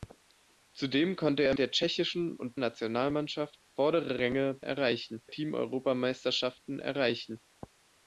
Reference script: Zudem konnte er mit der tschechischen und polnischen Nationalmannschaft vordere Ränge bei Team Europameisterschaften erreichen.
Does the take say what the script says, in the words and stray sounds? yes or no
no